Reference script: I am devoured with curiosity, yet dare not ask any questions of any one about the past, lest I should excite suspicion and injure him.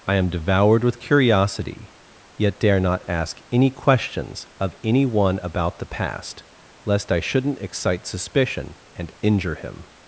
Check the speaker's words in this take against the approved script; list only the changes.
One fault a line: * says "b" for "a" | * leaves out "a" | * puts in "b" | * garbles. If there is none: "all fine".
* says "shouldn't" for "should"